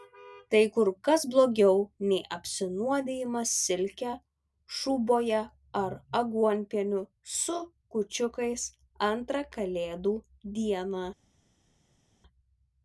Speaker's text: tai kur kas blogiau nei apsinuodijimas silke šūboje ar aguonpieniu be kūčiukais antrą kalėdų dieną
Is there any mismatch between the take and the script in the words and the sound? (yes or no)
yes